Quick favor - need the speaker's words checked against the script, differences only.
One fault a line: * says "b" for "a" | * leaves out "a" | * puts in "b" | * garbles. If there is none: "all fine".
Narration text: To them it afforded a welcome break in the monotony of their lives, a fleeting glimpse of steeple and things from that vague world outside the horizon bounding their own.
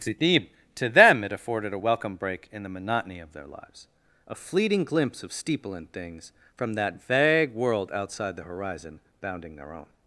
all fine